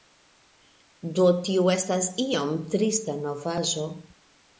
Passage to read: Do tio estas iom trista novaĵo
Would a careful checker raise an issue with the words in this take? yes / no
no